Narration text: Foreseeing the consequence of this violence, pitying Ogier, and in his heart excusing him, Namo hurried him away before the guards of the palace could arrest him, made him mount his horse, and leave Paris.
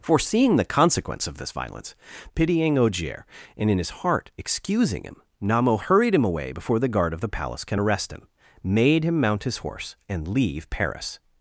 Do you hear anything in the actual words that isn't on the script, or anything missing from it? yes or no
yes